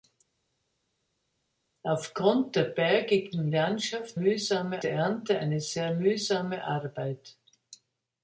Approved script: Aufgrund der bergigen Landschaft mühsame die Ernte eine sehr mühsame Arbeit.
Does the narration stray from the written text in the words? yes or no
no